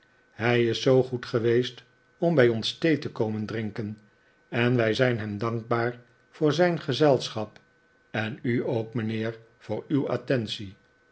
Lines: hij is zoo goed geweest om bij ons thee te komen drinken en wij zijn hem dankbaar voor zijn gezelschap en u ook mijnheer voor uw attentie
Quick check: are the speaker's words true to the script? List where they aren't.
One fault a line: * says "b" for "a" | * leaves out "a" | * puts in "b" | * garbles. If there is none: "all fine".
all fine